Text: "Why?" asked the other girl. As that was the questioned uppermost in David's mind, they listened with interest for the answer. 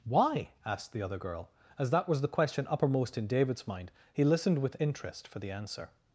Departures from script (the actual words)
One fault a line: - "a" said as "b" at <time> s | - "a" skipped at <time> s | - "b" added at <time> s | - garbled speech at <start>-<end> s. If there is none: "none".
- "questioned" said as "question" at 2.3 s
- "they" said as "he" at 4.1 s